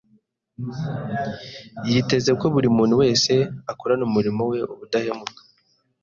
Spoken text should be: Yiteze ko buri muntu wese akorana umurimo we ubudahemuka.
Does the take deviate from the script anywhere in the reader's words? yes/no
no